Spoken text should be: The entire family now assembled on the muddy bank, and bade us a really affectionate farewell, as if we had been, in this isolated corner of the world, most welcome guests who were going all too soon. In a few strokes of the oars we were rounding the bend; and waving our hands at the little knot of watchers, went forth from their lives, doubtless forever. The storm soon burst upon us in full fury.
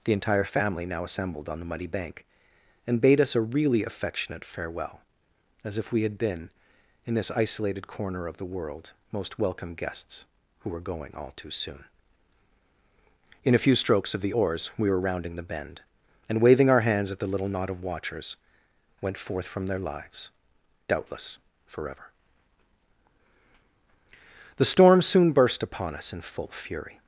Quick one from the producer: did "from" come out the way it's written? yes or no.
yes